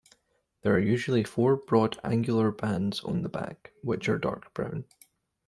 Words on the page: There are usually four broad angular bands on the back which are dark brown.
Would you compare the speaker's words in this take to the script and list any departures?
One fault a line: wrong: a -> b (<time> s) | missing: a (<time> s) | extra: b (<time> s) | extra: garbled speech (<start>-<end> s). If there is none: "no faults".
no faults